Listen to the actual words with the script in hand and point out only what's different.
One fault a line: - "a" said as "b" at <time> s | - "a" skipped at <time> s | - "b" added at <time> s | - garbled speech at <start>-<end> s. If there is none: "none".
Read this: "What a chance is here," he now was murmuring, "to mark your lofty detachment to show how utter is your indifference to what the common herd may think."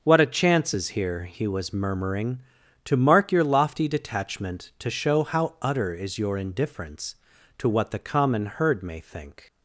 - "now" skipped at 1.4 s